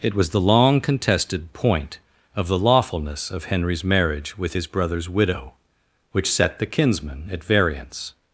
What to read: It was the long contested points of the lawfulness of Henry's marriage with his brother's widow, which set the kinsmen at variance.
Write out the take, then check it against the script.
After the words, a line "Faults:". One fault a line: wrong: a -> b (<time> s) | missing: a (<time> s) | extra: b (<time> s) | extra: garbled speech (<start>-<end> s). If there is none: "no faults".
It was the long contested point of the lawfulness of Henry's marriage with his brother's widow, which set the kinsmen at variance.
Faults:
wrong: points -> point (1.5 s)